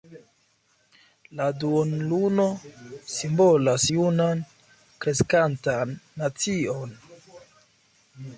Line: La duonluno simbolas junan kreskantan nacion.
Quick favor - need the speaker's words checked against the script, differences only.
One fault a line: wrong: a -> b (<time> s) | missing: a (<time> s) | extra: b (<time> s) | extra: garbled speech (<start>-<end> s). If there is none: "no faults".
no faults